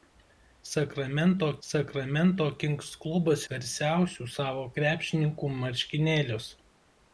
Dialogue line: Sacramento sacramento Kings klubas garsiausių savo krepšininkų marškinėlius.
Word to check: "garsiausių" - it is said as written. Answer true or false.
true